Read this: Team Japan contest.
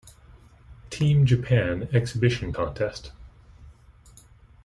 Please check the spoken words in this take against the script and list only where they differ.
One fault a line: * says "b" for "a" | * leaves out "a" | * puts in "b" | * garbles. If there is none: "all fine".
* puts in "exhibition"